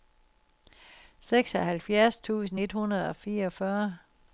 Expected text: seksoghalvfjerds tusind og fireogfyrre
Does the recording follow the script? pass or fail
fail